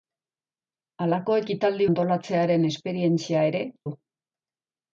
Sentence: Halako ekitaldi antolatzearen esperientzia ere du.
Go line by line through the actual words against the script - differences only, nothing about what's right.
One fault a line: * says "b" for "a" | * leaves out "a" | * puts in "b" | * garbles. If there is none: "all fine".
all fine